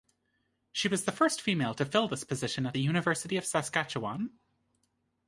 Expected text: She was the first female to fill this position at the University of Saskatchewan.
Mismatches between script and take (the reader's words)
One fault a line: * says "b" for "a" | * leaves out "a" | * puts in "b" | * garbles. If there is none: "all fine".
all fine